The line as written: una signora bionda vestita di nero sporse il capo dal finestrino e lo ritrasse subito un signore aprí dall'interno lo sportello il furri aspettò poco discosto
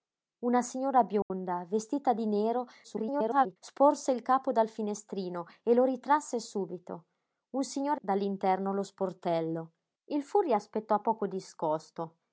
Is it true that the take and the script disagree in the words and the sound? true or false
true